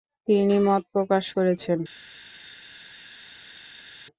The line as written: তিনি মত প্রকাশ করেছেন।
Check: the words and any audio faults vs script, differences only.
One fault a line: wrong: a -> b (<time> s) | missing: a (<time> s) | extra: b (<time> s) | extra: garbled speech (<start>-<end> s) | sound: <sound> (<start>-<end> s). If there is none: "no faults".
no faults